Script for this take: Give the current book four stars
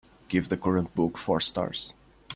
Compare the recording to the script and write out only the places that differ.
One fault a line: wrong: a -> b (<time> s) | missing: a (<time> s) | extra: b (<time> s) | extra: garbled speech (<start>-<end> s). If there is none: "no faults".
no faults